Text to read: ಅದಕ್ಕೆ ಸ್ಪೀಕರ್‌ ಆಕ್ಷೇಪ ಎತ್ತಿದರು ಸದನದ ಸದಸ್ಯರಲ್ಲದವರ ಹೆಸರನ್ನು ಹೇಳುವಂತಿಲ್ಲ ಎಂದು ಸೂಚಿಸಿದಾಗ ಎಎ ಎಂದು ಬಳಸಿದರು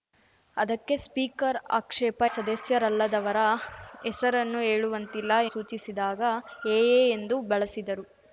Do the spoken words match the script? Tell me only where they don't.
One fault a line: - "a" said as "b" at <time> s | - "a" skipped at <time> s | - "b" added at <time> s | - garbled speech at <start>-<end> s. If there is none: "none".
- "ಎತ್ತಿದರು ಸದನದ" skipped at 2.2 s
- "ಎಂದು" skipped at 5.3 s